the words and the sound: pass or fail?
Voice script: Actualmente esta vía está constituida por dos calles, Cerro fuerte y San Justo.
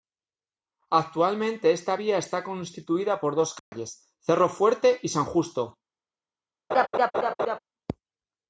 fail